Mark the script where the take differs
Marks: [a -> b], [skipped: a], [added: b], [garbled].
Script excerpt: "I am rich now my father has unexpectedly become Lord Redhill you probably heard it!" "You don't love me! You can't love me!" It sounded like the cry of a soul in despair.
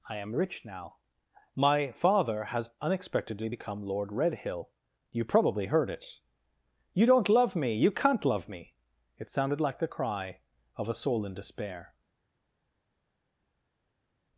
"I am rich now my father has unexpectedly become Lord Redhill you probably heard it!" "You don't love me! You can't love me!" It sounded like the cry of a soul in despair.